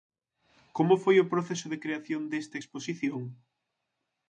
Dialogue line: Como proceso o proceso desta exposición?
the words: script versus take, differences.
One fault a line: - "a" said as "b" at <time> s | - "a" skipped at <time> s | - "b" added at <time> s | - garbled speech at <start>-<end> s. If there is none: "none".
- "proceso" said as "foi" at 1.0 s
- "de creación" added at 1.7 s